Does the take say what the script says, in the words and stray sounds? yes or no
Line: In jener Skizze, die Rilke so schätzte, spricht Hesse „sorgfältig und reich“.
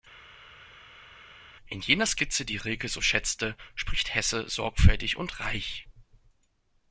yes